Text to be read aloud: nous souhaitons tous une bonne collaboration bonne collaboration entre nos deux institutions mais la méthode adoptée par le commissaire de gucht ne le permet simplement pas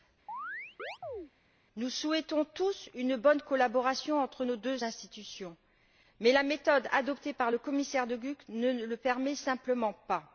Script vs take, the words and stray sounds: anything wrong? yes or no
yes